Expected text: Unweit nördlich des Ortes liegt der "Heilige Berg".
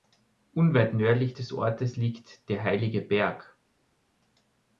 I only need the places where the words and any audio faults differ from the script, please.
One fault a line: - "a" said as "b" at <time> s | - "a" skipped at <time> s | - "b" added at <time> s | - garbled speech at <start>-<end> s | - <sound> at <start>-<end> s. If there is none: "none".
none